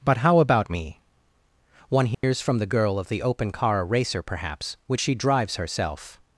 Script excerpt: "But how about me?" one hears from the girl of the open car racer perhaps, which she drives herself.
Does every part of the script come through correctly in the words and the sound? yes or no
no